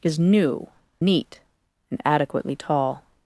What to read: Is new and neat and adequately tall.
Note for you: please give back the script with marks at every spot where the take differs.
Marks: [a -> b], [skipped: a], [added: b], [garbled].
Is new [skipped: and] neat and adequately tall.